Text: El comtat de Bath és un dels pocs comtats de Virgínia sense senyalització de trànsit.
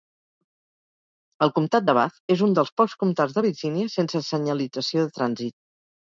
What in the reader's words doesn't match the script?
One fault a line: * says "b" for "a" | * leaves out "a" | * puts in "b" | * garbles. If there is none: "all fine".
all fine